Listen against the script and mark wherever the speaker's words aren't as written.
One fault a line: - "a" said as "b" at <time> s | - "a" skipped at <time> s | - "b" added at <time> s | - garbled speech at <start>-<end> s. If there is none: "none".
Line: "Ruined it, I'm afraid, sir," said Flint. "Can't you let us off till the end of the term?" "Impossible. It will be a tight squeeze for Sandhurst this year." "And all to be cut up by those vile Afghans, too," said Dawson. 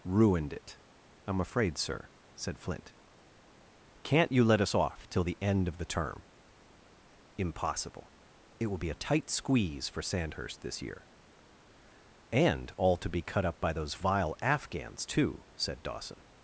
none